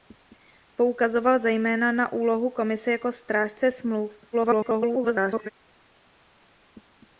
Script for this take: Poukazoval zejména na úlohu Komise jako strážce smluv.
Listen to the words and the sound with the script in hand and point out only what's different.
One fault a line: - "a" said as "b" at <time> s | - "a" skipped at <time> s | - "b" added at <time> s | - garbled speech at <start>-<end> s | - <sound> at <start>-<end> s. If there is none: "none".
- garbled speech at 4.3-5.5 s